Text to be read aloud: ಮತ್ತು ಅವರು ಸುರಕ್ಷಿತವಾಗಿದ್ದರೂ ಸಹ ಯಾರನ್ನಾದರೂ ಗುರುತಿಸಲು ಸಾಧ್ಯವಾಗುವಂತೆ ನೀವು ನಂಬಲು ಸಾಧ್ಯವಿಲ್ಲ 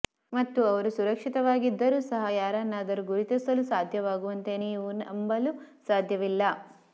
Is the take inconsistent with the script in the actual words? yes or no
no